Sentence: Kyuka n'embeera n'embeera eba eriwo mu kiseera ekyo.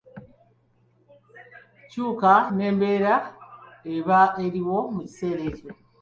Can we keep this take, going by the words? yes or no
no